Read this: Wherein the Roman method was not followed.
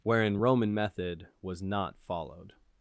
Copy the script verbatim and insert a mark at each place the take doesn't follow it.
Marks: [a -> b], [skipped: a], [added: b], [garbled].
Wherein [skipped: the] Roman method was not followed.